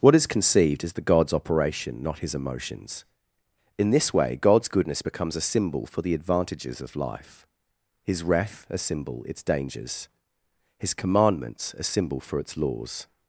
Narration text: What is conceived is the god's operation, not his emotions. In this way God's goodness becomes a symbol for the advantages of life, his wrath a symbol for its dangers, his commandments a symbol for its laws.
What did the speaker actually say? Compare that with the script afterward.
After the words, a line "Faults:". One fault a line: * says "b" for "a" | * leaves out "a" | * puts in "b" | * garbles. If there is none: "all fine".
What is conceived is the god's operation, not his emotions. In this way God's goodness becomes a symbol for the advantages of life, his wrath a symbol its dangers, his commandments a symbol for its laws.
Faults:
* leaves out "for"